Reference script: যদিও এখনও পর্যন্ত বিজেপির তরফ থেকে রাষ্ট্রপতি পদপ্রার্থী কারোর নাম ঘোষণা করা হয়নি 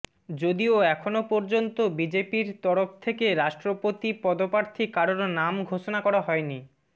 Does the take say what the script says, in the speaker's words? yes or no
yes